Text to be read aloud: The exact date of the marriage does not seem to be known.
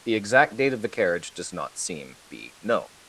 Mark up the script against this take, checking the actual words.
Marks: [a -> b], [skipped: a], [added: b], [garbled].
The exact date of the [marriage -> carriage] does not seem [skipped: to] be known.